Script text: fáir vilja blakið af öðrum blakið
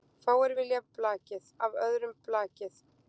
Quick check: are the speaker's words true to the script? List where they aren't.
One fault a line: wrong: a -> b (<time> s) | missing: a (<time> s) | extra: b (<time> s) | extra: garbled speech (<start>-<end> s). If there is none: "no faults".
no faults